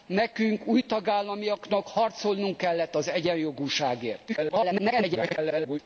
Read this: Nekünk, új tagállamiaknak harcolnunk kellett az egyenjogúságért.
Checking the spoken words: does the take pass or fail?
fail